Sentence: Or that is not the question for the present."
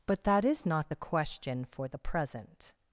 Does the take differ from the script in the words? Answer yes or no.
yes